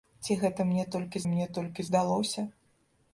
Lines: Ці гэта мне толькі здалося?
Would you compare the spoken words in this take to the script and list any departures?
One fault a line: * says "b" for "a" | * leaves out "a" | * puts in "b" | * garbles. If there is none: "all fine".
* puts in "мне толькі"